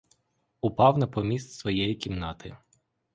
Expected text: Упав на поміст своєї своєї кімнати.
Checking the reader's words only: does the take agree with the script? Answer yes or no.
no